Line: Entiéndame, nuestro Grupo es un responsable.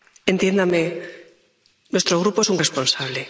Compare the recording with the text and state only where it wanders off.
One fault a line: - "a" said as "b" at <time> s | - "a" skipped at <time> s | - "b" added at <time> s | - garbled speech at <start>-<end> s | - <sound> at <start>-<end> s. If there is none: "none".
none